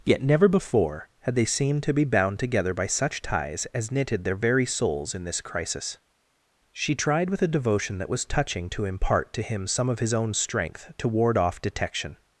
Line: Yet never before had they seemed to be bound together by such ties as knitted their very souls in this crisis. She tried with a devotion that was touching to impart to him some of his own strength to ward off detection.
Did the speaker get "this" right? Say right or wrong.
right